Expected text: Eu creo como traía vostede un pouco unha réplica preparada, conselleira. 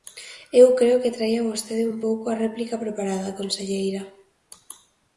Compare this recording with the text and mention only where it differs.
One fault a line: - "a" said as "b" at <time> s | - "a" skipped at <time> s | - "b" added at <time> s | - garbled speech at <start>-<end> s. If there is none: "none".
- "como" said as "que" at 1.0 s
- "unha" said as "a" at 2.3 s